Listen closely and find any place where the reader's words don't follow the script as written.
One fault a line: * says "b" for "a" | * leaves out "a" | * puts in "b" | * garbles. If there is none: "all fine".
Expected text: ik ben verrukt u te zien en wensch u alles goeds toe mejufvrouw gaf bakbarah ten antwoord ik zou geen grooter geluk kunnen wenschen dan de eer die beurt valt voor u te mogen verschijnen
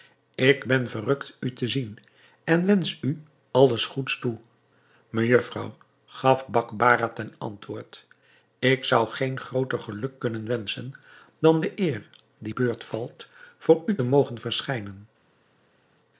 all fine